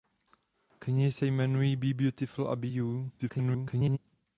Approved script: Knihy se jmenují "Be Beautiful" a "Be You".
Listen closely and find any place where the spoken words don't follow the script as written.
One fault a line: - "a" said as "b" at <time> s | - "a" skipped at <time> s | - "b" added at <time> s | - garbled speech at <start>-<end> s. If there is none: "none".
- garbled speech at 3.2-4.0 s